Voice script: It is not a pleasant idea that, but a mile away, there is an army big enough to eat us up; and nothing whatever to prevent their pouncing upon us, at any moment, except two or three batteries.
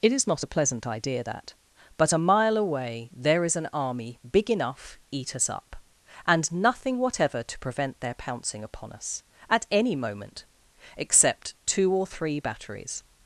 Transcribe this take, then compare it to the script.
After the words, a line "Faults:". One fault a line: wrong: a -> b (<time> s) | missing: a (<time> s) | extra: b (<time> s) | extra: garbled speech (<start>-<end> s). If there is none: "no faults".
It is not a pleasant idea that, but a mile away, there is an army big enough eat us up; and nothing whatever to prevent their pouncing upon us, at any moment, except two or three batteries.
Faults:
missing: to (5.0 s)